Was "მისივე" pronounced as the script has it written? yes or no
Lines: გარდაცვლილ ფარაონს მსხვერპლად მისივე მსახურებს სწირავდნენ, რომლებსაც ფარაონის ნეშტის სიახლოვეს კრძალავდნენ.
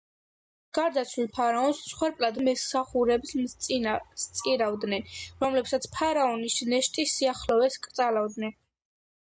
no